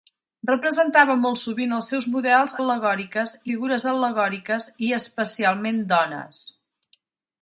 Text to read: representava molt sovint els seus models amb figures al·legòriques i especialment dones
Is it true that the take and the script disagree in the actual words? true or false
true